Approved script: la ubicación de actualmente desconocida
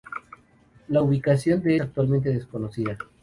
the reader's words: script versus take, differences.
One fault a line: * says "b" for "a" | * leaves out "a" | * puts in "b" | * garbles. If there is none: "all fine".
all fine